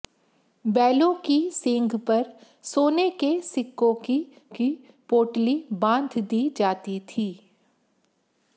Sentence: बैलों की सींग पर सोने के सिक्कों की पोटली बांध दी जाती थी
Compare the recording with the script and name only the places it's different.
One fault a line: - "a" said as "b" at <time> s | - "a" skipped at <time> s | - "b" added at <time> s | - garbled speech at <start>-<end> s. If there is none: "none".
- "की" added at 4.6 s